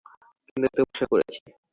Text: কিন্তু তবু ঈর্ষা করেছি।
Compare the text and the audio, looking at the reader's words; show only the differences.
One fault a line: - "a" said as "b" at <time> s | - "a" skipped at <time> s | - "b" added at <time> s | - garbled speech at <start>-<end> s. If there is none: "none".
none